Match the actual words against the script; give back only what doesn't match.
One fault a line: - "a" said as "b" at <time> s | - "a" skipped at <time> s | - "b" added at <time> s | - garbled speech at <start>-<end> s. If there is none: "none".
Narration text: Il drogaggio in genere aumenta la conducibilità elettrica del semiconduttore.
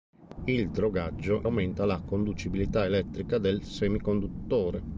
- "in genere" skipped at 1.4 s